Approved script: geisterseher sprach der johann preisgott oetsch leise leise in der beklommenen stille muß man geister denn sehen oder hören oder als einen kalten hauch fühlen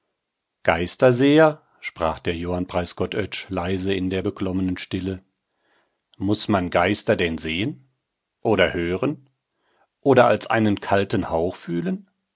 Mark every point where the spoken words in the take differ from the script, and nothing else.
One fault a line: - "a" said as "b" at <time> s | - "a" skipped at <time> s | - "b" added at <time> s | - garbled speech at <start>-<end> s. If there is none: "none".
- "leise" skipped at 3.9 s